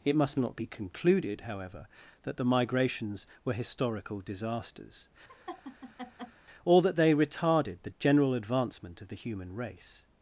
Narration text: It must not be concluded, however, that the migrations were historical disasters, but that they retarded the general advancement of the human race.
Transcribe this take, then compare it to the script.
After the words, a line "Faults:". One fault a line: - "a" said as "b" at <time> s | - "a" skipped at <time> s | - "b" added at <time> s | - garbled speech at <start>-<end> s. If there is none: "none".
It must not be concluded, however, that the migrations were historical disasters, or that they retarded the general advancement of the human race.
Faults:
- "but" said as "or" at 6.6 s